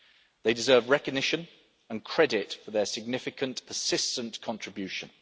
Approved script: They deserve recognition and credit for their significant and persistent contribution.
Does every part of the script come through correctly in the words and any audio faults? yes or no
no